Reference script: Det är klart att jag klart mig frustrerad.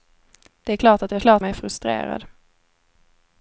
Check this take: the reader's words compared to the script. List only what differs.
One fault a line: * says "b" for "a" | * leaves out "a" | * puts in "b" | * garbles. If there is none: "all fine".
all fine